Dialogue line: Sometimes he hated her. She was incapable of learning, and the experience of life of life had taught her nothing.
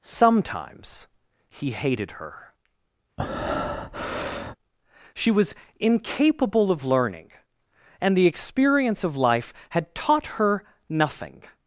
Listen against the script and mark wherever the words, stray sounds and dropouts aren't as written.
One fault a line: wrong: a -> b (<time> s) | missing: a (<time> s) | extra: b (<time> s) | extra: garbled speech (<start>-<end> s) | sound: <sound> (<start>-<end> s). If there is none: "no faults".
sound: breath (3.2-4.6 s)
missing: of life (9.5 s)